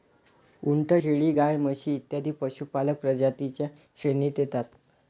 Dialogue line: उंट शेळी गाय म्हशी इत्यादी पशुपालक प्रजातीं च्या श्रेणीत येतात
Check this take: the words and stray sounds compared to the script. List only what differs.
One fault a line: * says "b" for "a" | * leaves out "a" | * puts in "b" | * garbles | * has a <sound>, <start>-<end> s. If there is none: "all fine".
all fine